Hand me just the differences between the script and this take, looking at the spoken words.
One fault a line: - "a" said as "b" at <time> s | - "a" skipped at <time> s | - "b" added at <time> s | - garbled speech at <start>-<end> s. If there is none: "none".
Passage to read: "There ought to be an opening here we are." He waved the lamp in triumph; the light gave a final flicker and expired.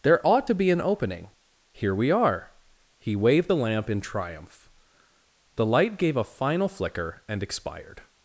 none